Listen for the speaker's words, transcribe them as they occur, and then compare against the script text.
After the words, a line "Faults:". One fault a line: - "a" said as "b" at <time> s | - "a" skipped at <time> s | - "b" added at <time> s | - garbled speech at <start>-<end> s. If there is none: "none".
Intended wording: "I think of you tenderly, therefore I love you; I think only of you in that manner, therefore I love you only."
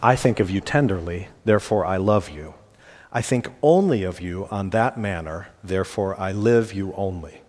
"I think of you tenderly, therefore I love you; I think only of you on that manner, therefore I live you only."
Faults:
- "in" said as "on" at 4.5 s
- "love" said as "live" at 6.3 s